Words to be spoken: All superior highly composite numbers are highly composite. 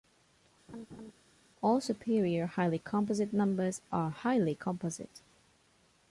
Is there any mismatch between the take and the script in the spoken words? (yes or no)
no